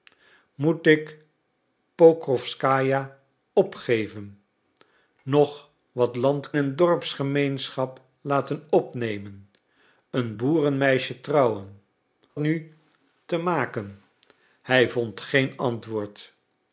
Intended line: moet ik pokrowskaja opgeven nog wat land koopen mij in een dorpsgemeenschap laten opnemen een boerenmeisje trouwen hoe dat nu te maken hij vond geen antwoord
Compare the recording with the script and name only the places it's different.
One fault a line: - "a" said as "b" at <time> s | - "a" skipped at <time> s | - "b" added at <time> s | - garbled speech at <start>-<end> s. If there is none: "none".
- "koopen mij in" skipped at 6.5 s
- "hoe dat" skipped at 11.8 s